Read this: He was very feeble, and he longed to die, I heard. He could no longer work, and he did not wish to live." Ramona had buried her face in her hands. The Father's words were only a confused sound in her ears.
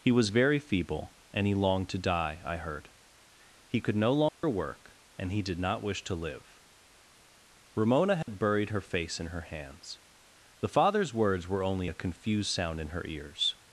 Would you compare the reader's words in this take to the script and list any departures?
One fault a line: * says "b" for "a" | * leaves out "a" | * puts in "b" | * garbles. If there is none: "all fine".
all fine